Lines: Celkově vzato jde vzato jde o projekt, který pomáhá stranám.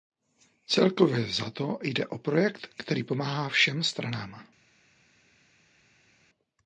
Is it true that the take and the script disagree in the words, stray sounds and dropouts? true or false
true